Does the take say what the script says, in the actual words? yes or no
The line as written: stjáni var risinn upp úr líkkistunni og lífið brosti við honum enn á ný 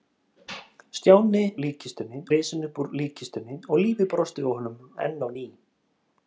no